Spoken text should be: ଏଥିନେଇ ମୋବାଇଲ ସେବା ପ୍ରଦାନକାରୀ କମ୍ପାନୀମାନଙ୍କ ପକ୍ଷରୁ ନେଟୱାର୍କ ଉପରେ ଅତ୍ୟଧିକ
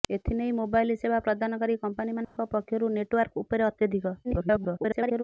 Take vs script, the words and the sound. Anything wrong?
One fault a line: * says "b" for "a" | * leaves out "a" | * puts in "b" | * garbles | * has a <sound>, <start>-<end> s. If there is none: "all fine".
* has a dropout, 2.2-2.4 s
* garbles